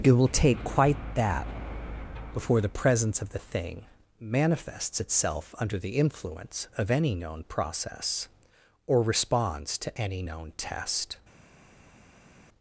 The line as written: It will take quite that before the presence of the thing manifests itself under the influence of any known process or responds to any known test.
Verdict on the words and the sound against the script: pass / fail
pass